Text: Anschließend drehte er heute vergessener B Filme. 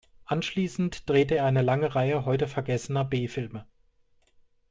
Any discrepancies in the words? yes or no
yes